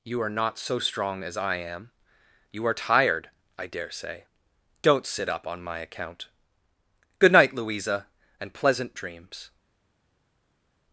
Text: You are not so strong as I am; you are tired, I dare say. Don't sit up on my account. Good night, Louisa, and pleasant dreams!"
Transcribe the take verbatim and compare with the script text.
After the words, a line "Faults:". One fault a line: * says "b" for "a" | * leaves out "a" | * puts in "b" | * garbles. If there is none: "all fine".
You are not so strong as I am; you are tired, I dare say. Don't sit up on my account. Good night, Louisa, and pleasant dreams!"
Faults:
all fine